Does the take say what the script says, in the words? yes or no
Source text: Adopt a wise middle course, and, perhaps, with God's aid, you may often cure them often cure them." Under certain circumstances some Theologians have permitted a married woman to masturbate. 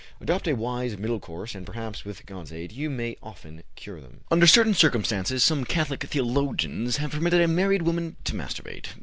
no